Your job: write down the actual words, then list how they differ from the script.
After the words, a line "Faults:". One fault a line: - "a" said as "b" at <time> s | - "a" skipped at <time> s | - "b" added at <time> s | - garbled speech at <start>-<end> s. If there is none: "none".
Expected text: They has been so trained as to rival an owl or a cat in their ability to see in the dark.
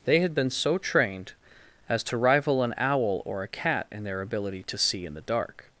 They had been so trained as to rival an owl or a cat in their ability to see in the dark.
Faults:
- "has" said as "had" at 0.2 s